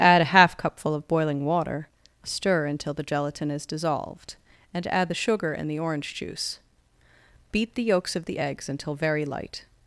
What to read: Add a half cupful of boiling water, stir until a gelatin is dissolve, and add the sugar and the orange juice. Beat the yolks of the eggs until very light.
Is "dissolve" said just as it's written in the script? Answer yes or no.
no